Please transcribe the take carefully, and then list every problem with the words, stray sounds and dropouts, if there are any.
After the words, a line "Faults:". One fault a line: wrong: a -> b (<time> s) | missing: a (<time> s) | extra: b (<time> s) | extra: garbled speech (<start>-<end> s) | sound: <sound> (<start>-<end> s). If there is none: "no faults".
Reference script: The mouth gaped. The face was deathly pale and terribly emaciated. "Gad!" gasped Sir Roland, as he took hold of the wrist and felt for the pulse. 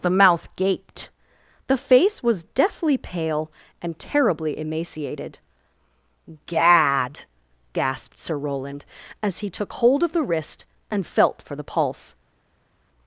The mouth gaped. The face was deathly pale and terribly emaciated. "Gad!" gasped Sir Roland, as he took hold of the wrist and felt for the pulse.
Faults:
no faults